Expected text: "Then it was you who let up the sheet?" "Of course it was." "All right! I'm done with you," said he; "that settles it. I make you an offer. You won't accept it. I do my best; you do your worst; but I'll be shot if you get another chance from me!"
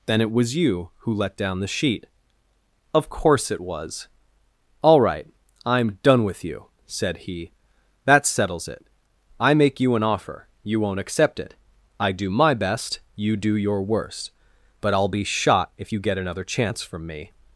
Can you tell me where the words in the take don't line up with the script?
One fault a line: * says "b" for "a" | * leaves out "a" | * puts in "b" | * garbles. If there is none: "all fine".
* says "down" for "up"